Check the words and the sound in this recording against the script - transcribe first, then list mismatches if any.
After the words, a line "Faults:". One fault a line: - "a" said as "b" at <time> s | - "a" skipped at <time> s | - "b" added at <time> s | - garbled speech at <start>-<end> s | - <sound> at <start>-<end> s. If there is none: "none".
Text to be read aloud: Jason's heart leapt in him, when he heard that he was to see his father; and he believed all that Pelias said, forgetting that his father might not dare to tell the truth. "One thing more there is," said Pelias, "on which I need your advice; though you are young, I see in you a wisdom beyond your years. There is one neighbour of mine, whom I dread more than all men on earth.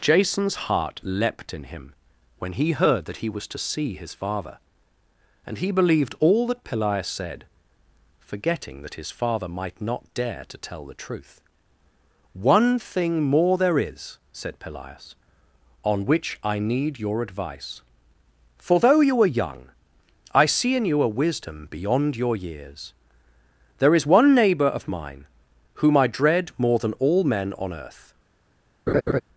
Jason's heart leapt in him, when he heard that he was to see his father; and he believed all that Pelias said, forgetting that his father might not dare to tell the truth. "One thing more there is," said Pelias, "on which I need your advice; for though you are young, I see in you a wisdom beyond your years. There is one neighbour of mine, whom I dread more than all men on earth.
Faults:
- "for" added at 18.6 s
- laugh at 28.9-29.2 s